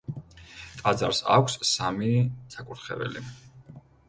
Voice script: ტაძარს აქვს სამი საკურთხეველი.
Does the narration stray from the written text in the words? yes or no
no